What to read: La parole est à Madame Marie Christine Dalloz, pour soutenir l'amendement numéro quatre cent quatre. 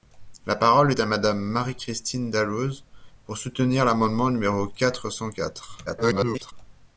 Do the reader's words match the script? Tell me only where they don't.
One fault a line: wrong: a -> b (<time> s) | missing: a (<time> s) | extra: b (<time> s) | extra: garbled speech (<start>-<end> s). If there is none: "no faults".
extra: garbled speech (5.9-6.5 s)